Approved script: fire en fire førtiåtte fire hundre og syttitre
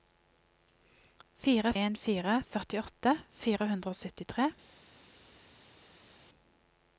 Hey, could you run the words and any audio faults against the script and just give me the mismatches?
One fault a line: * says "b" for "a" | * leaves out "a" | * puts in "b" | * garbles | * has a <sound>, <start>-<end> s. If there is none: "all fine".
all fine